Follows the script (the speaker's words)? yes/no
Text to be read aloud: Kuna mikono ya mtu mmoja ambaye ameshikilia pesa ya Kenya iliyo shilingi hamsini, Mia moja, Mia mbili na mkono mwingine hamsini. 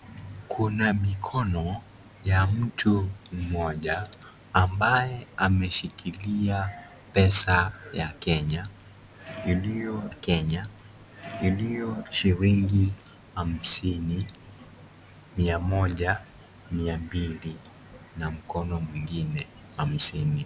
no